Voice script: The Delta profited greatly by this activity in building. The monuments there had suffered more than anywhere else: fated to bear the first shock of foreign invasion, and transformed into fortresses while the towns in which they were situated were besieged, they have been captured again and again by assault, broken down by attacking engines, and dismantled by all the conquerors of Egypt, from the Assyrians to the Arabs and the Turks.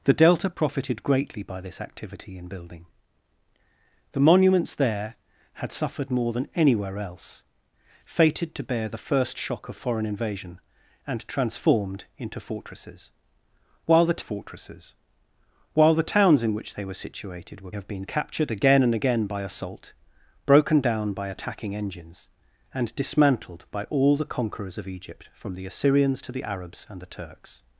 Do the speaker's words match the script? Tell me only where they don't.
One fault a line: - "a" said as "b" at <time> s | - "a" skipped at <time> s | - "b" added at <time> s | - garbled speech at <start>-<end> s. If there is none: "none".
- "fortresses while the" added at 14.2 s
- "besieged they" skipped at 17.7 s